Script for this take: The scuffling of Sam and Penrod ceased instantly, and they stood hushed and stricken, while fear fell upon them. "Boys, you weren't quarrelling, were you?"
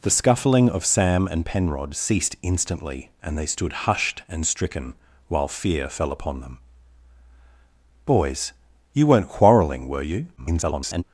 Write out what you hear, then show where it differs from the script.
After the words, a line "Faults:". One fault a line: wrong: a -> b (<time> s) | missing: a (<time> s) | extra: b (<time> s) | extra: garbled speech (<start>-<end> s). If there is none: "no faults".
The scuffling of Sam and Penrod ceased instantly, and they stood hushed and stricken, while fear fell upon them. "Boys, you weren't quarrelling, were you?" [garbled]
Faults:
extra: garbled speech (10.4-11.0 s)